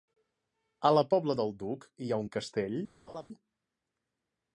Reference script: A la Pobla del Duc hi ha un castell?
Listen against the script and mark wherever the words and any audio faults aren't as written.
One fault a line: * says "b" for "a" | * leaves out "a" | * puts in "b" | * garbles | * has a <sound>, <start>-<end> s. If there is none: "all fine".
* has a laugh, 3.1-3.3 s